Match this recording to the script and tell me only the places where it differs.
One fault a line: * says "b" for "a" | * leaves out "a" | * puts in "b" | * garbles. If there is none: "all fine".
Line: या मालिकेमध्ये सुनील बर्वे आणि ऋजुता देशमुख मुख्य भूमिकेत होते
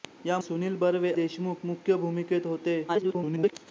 * leaves out "मालिकेमध्ये"
* leaves out "आणि ऋजुता"
* garbles